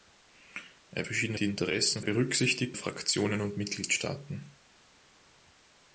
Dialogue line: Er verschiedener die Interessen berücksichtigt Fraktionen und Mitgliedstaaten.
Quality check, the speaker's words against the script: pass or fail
pass